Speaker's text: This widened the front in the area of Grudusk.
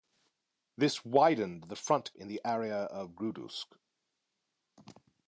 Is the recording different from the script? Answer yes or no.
no